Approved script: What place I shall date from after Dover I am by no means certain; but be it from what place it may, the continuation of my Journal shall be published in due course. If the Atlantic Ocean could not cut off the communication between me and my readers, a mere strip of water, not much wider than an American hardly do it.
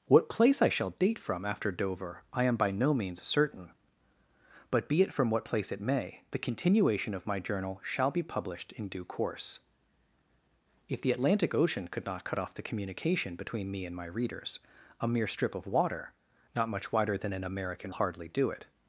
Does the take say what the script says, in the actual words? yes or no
yes